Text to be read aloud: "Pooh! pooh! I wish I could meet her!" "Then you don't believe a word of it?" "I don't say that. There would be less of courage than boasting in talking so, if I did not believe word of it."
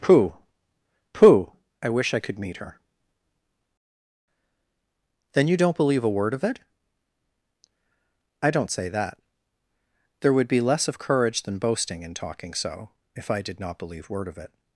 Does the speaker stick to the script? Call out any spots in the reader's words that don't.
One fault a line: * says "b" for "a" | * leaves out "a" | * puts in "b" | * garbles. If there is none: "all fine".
all fine